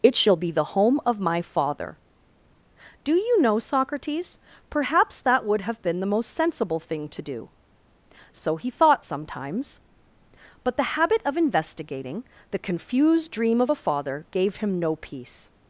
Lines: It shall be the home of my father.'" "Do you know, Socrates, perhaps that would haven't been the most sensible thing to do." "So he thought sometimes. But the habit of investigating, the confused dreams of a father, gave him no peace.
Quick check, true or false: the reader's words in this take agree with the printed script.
false